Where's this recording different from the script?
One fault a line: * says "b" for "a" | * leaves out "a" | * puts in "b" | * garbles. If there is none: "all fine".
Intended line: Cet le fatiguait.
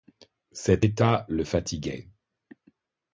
* puts in "état"